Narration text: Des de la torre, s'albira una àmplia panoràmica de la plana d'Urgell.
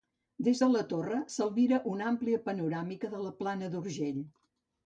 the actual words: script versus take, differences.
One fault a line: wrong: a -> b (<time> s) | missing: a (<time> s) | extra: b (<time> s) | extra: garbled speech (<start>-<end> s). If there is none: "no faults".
no faults